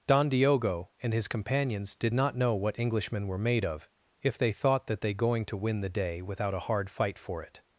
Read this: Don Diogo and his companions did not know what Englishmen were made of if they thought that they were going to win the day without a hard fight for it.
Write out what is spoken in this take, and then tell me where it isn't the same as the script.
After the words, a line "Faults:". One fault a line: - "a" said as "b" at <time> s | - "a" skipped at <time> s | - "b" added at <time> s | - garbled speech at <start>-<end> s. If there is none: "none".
Don Diogo and his companions did not know what Englishmen were made of if they thought that they going to win the day without a hard fight for it.
Faults:
- "were" skipped at 5.1 s